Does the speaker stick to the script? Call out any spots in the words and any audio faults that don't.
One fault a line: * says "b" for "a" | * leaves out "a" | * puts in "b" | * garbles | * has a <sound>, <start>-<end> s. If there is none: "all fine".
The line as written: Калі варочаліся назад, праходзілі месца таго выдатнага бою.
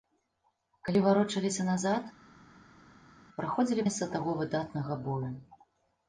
all fine